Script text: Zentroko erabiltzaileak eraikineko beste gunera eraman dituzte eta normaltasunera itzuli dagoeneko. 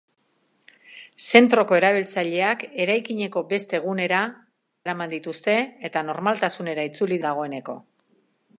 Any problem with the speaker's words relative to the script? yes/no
no